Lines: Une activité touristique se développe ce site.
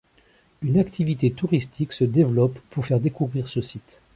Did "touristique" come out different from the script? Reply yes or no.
no